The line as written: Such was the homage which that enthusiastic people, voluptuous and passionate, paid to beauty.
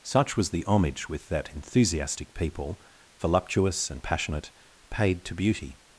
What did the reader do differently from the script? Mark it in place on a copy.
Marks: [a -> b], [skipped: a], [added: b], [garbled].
Such was the homage [which -> with] that enthusiastic people, voluptuous and passionate, paid to beauty.